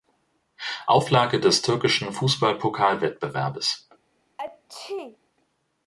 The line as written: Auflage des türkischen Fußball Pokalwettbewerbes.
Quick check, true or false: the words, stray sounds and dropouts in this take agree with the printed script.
false